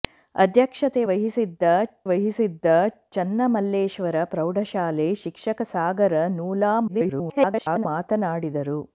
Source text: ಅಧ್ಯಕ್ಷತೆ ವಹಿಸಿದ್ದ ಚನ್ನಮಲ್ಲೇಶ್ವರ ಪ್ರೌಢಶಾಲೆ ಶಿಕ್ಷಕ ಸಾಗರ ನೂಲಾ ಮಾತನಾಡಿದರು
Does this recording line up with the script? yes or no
no